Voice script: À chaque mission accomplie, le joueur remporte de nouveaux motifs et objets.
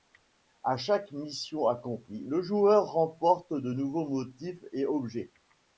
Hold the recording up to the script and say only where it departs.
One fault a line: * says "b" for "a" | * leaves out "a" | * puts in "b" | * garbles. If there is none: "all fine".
all fine